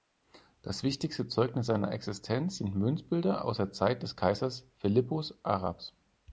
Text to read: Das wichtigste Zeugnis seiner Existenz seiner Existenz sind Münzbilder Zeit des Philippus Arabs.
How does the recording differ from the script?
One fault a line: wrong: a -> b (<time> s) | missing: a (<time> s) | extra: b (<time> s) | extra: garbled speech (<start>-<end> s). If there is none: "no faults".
wrong: seiner Existenz sind Münzbilder -> sind Münzbilder aus der (2.6 s)
extra: Kaisers (4.2 s)